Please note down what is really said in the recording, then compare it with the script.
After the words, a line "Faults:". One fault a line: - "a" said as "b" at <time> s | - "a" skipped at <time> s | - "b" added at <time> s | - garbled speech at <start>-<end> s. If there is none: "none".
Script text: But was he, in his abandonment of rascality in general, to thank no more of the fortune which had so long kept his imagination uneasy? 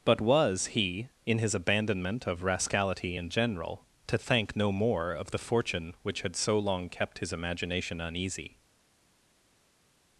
But was he, in his abandonment of rascality in general, to thank no more of the fortune which had so long kept his imagination uneasy?
Faults:
none